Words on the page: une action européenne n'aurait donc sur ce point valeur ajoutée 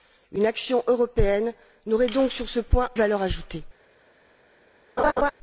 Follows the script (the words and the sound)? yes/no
no